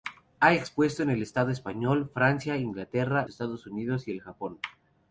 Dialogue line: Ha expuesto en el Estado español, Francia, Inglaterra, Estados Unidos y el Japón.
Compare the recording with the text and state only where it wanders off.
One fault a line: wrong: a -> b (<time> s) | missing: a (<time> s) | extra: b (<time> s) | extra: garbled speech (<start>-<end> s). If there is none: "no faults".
no faults